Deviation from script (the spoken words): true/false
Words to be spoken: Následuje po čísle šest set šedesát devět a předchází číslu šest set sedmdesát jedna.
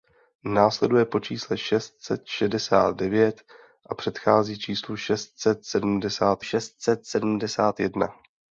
true